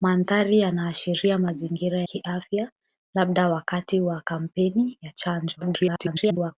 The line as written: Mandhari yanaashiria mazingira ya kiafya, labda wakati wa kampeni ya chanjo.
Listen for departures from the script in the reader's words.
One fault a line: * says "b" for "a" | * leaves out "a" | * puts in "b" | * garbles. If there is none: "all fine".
* leaves out "ya"
* garbles